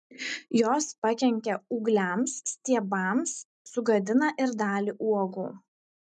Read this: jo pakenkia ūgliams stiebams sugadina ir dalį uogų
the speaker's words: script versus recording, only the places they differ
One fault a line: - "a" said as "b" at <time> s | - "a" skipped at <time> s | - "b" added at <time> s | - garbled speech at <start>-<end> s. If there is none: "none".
- "jo" said as "jos" at 0.6 s